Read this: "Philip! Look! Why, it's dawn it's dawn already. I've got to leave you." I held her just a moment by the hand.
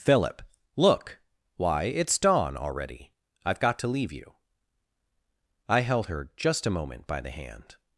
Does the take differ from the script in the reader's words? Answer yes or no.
yes